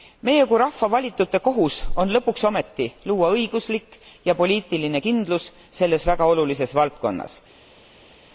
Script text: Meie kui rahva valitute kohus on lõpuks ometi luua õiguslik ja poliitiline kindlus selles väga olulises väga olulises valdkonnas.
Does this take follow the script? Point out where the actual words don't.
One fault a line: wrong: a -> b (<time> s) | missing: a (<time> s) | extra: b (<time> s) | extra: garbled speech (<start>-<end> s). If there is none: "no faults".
missing: väga olulises (6.7 s)